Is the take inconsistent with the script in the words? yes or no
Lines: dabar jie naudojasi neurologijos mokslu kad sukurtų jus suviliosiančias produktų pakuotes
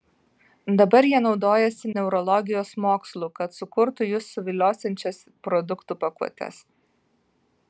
no